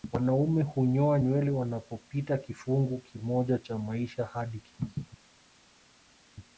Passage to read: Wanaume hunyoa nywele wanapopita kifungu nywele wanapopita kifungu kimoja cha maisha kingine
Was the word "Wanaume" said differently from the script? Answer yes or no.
no